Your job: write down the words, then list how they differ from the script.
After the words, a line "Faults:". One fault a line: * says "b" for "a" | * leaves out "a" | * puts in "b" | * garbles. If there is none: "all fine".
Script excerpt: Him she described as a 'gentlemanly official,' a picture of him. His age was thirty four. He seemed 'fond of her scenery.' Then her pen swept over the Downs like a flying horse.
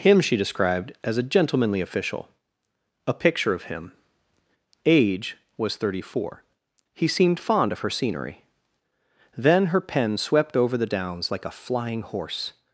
Him she described as a 'gentlemanly official,' a picture of him. age was thirty four. He seemed 'fond of her scenery.' Then her pen swept over the Downs like a flying horse.
Faults:
* leaves out "His"